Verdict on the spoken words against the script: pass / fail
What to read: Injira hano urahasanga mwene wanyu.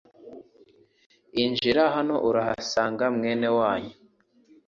pass